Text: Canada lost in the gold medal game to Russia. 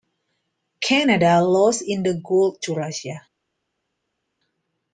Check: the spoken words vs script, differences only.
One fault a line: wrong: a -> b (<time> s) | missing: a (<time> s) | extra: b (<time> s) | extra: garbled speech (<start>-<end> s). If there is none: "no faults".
missing: medal game (2.6 s)